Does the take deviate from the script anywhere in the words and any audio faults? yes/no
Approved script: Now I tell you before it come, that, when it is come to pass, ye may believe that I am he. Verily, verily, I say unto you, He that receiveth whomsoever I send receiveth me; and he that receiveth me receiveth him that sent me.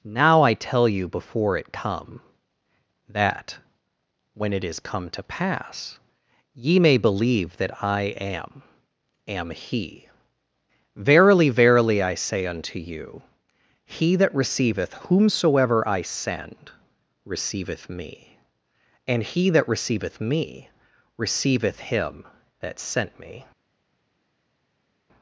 yes